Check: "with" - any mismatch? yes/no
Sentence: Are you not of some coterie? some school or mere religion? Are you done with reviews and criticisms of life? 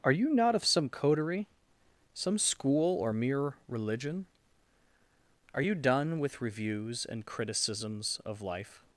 no